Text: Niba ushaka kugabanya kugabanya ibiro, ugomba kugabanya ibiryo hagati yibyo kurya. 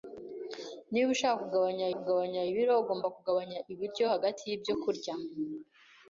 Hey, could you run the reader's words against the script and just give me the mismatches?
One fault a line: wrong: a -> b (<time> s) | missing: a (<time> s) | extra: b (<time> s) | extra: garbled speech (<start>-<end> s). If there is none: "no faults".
no faults